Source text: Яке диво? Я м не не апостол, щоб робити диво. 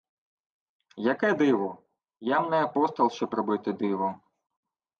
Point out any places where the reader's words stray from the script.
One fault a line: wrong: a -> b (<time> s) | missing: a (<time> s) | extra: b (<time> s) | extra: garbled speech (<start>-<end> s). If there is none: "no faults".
missing: не (2.6 s)